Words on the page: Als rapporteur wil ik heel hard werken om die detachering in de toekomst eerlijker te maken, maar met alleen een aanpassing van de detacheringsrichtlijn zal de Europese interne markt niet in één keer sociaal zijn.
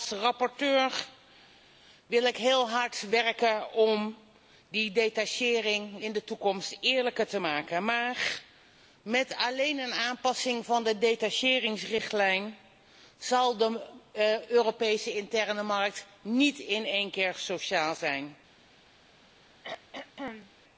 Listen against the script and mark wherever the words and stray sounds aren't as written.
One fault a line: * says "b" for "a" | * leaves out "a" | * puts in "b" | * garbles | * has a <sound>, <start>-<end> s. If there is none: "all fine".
* has a throat clearing, 19.6-20.5 s